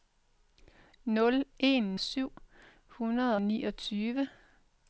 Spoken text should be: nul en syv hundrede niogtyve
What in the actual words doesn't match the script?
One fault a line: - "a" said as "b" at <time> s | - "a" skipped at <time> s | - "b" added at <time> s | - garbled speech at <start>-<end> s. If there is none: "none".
none